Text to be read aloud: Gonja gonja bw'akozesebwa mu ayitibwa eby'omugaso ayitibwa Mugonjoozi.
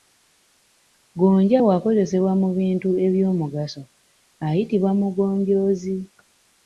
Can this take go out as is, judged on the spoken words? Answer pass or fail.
fail